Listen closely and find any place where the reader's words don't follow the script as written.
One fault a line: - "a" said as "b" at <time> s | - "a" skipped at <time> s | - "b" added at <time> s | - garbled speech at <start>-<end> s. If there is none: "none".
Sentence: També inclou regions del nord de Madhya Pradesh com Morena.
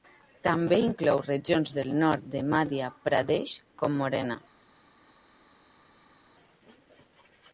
none